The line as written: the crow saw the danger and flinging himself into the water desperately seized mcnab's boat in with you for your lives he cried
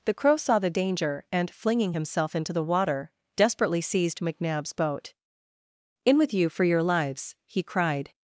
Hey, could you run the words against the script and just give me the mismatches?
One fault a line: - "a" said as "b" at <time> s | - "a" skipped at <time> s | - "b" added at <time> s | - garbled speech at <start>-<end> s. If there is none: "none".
none